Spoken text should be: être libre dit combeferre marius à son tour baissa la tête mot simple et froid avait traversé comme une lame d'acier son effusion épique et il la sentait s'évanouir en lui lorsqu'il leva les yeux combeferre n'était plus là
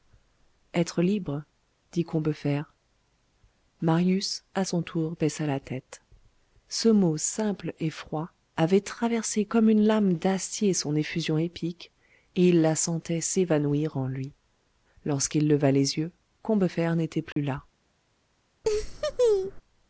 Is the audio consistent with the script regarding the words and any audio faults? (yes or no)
no